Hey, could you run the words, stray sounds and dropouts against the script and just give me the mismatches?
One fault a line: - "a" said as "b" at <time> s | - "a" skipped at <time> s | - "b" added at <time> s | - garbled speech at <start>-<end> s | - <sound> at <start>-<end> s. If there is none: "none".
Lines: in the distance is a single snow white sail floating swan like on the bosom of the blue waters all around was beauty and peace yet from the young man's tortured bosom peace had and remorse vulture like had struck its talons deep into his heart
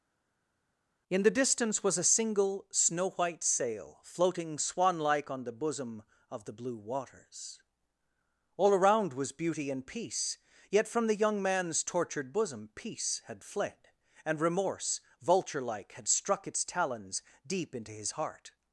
- "is" said as "was" at 1.8 s
- "fled" added at 13.4 s